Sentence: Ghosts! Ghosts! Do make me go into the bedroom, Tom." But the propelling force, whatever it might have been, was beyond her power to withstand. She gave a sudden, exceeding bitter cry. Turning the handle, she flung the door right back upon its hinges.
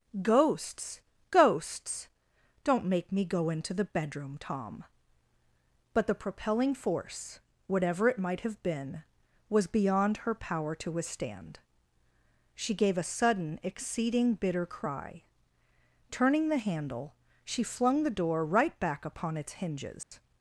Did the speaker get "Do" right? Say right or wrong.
wrong